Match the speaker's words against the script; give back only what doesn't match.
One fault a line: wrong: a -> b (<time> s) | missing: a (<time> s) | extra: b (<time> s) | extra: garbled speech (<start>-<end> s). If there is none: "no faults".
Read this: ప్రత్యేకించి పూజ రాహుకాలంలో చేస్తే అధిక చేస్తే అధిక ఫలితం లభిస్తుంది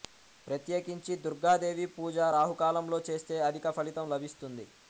extra: దుర్గాదేవి (1.2 s)
missing: చేస్తే అధిక (3.7 s)